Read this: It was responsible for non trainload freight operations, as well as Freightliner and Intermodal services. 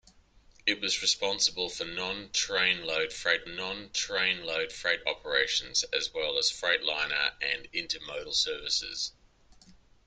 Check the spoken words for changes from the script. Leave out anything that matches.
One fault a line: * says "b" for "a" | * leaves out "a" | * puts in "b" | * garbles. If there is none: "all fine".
* puts in "non trainload freight"